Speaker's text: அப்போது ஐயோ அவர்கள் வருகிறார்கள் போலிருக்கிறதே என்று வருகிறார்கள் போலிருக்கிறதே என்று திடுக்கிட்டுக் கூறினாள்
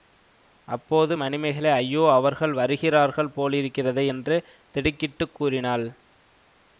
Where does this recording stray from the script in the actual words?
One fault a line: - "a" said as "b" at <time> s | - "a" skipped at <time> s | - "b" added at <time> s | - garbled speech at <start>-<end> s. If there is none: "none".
- "மணிமேகலை" added at 1.2 s
- "வருகிறார்கள் போலிருக்கிறதே என்று" skipped at 4.4 s